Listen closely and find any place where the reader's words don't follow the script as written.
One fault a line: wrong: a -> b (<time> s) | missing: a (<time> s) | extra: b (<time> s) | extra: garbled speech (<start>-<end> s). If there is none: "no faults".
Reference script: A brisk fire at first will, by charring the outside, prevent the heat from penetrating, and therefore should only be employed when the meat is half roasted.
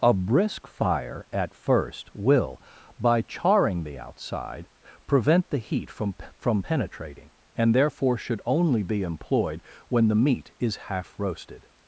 extra: from (6.3 s)